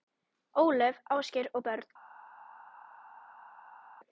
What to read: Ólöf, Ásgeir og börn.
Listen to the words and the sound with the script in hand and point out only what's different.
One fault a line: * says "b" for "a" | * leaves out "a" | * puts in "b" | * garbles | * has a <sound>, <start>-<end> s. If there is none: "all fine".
all fine